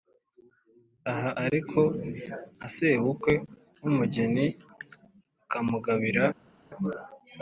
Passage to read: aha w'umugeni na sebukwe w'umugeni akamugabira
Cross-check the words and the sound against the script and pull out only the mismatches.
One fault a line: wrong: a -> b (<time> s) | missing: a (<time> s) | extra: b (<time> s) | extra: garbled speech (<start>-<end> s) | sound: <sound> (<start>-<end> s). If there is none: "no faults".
wrong: w'umugeni -> ariko (1.4 s)